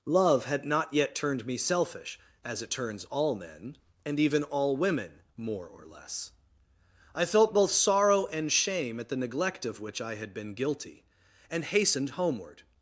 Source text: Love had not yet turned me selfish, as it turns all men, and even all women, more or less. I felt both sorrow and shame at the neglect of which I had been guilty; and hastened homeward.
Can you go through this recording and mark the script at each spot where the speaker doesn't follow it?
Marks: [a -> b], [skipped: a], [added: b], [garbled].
Love had not yet turned me selfish, as it turns all men, and even all women, more or less. I felt both sorrow and shame at the neglect of which I had been guilty; and hastened homeward.